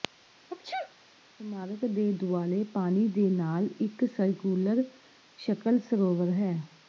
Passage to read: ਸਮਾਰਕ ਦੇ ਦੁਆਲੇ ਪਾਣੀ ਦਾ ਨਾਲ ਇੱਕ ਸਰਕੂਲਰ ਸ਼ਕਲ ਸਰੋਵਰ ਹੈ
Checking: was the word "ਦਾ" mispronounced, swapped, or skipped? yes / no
yes